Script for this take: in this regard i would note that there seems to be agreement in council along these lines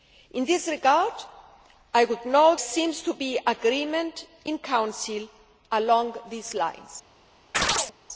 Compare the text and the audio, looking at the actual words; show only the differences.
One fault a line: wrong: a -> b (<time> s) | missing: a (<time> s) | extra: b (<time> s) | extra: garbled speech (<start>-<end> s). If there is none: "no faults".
missing: that there (2.6 s)